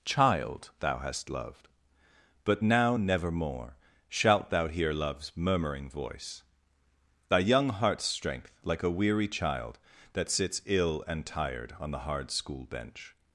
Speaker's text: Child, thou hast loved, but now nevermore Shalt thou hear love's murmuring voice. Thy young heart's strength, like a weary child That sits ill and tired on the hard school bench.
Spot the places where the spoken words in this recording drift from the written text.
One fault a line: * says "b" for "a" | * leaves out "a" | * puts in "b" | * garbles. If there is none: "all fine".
all fine